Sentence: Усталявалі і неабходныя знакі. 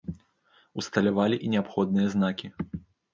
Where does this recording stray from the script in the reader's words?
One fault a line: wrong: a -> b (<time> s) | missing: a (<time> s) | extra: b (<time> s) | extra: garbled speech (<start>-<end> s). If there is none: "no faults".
no faults